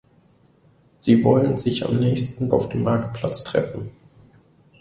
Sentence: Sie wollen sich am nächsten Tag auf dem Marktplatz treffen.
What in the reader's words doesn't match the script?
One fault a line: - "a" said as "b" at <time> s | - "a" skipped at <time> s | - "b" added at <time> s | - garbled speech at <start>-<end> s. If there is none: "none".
- "Tag" skipped at 2.5 s